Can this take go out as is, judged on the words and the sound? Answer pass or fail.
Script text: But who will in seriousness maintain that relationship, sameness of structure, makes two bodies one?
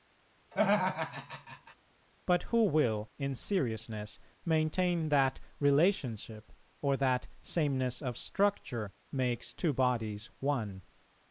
fail